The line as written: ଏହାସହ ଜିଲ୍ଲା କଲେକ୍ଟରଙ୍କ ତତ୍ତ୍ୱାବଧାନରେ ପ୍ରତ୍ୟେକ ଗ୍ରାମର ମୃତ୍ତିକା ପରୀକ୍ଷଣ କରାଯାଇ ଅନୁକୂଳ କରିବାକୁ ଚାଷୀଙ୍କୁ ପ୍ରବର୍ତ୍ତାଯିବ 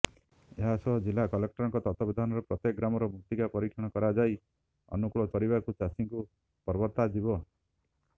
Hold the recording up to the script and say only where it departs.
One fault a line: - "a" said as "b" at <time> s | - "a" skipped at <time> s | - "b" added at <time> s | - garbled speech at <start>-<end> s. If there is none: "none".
none